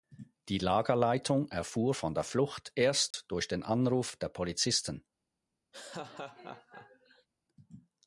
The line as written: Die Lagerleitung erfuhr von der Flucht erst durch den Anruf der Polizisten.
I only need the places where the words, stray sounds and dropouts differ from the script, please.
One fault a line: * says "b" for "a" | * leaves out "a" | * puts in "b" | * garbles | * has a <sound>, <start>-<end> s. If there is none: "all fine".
* has a dropout, 3.1-3.1 s
* has a laugh, 5.7-7.3 s